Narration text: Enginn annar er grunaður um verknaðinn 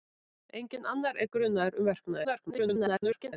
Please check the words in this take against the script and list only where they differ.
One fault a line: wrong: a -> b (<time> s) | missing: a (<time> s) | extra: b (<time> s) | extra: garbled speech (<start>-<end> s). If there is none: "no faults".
extra: garbled speech (2.2-3.3 s)